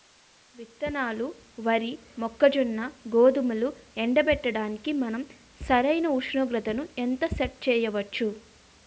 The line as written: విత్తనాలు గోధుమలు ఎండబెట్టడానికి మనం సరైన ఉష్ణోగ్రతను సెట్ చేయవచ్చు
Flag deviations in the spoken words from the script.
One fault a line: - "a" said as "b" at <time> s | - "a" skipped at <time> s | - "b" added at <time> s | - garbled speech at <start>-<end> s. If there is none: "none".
- "వరి మొక్కజొన్న" added at 1.6 s
- "ఎంత" added at 7.0 s